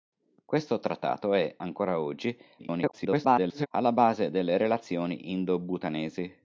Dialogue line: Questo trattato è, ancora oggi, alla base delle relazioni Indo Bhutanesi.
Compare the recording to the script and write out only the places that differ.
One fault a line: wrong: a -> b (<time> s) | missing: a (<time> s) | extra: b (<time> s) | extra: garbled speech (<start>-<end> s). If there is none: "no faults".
extra: garbled speech (2.6-3.7 s)